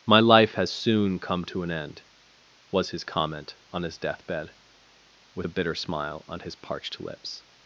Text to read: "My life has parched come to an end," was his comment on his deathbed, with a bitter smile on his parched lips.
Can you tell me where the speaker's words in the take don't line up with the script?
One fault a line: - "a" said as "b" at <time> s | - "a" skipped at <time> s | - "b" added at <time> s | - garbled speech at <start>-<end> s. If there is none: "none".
- "parched" said as "soon" at 0.7 s